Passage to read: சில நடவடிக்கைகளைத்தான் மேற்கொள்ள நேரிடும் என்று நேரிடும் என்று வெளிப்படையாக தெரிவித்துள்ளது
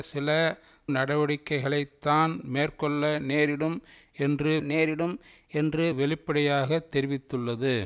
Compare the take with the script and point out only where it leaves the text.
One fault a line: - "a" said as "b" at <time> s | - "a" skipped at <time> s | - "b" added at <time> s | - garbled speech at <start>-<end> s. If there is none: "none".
none